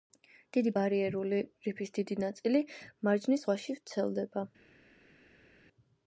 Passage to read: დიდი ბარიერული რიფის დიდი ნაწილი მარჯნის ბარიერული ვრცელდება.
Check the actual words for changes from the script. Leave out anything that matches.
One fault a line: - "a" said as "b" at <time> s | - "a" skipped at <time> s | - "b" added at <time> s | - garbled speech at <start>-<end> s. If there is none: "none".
- "ბარიერული" said as "ზღვაში" at 3.5 s